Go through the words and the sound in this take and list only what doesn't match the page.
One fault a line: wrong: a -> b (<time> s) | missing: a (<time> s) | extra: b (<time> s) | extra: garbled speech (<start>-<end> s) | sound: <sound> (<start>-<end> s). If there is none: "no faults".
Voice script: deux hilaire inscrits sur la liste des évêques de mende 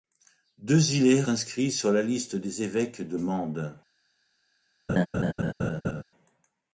sound: laugh (4.9-6.0 s)